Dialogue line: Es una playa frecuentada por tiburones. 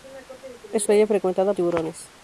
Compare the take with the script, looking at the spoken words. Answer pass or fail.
fail